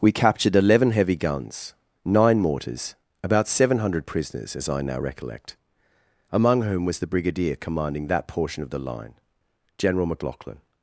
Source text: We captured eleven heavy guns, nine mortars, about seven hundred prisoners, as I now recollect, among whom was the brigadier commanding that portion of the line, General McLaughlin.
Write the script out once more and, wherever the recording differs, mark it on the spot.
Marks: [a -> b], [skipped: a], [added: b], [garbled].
We captured eleven heavy guns, nine mortars, about seven hundred prisoners, as I now recollect, among whom was the brigadier commanding that portion of the line, General McLaughlin.